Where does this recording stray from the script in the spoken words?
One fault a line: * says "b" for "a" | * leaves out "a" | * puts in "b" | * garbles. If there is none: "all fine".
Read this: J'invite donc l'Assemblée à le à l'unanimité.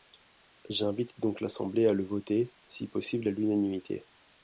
* puts in "voter si possible"